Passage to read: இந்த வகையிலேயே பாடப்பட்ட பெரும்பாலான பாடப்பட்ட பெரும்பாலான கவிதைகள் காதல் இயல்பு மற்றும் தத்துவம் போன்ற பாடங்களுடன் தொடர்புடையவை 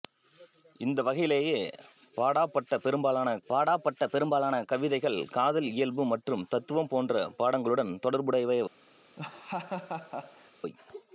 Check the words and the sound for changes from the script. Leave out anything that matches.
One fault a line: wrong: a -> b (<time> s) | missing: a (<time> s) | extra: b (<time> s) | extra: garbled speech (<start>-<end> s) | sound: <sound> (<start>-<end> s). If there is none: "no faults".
sound: laugh (9.2-10.5 s)